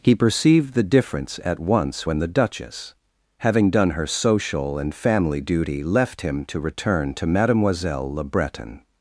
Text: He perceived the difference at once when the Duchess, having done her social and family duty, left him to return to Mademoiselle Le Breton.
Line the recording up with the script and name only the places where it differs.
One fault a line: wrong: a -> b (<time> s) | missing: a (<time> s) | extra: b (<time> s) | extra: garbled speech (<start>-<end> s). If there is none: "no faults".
no faults